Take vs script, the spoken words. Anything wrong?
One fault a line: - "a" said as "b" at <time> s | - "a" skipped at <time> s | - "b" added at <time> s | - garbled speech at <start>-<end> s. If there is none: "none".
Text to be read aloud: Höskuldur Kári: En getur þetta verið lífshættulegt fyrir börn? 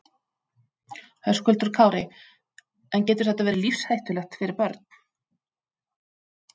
none